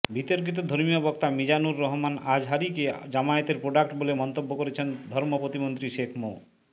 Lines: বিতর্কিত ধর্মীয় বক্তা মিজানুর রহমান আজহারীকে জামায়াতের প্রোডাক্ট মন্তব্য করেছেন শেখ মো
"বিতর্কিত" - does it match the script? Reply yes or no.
yes